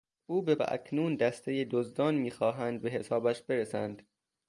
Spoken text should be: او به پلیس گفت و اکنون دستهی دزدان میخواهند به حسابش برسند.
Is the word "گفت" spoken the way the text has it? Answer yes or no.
no